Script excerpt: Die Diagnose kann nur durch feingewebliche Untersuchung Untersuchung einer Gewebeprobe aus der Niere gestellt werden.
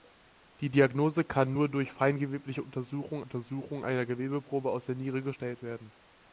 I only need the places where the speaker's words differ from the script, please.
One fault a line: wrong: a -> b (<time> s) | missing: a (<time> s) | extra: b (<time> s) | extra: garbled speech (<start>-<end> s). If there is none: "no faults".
no faults